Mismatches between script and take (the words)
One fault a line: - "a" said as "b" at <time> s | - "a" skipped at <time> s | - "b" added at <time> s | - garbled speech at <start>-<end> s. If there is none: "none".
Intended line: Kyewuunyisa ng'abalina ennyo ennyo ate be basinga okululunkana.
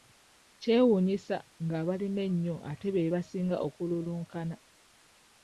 - "ennyo" skipped at 2.6 s